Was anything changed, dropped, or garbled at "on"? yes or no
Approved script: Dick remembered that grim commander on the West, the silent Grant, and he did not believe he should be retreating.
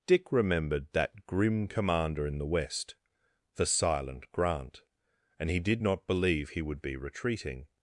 yes